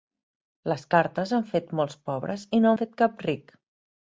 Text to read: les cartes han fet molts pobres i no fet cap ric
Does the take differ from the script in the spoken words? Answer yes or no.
no